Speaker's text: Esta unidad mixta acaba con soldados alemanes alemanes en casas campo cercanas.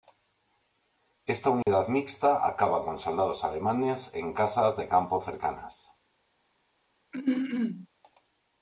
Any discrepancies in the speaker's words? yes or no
yes